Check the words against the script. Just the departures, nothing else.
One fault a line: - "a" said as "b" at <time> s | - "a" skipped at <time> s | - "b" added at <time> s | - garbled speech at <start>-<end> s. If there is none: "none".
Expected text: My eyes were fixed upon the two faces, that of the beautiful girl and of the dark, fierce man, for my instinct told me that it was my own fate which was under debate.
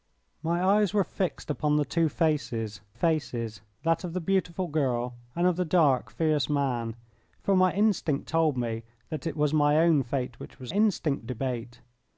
- "faces" added at 2.9 s
- "under" said as "instinct" at 10.7 s